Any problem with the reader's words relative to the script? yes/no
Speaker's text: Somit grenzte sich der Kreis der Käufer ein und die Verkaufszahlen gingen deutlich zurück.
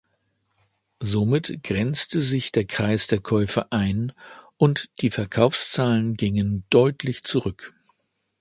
no